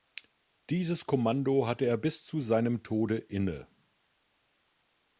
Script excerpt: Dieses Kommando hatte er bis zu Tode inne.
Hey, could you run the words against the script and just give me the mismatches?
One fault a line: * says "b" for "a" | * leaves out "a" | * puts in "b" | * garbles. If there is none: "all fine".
* puts in "seinem"